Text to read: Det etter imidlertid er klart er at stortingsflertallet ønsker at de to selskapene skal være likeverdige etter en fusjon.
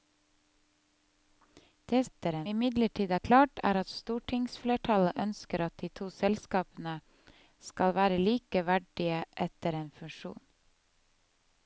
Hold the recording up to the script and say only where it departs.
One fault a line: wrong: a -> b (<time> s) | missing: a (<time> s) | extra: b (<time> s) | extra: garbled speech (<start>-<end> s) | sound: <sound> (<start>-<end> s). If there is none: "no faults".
no faults